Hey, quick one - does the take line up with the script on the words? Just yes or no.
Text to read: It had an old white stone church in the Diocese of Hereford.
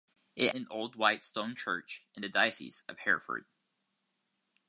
no